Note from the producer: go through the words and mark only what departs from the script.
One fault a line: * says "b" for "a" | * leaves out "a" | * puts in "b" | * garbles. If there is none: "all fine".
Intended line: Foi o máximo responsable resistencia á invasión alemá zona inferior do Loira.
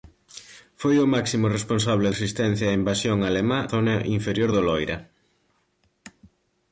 all fine